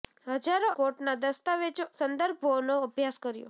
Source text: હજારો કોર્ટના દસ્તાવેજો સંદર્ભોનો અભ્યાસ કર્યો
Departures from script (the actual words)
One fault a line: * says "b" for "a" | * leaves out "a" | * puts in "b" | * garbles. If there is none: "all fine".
all fine